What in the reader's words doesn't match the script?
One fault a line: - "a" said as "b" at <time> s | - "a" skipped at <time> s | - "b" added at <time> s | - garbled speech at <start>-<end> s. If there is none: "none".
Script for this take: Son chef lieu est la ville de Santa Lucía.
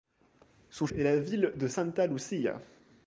- "chef lieu" skipped at 0.9 s